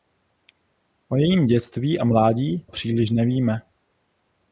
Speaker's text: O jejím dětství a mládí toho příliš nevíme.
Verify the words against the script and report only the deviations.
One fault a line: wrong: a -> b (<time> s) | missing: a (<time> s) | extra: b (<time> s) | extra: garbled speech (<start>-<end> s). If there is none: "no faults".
missing: toho (2.6 s)